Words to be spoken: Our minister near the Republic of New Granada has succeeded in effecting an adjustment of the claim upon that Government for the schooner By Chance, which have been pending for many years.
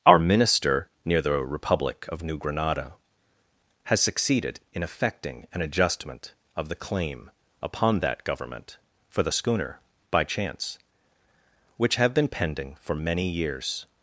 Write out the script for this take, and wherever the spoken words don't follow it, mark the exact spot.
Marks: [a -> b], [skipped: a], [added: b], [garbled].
Our minister near the Republic of New Granada has succeeded in effecting an adjustment of the claim upon that Government for the schooner By Chance, which have been pending for many years.